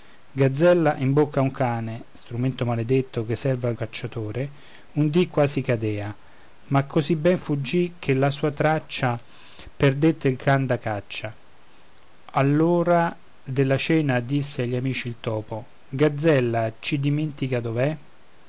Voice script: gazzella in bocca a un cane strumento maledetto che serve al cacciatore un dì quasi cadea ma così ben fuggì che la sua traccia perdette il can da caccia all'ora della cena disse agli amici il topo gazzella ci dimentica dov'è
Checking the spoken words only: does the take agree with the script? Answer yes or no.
yes